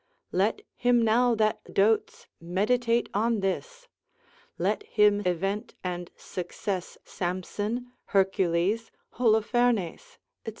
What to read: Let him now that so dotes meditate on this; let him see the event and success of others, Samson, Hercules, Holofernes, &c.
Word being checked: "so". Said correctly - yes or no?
no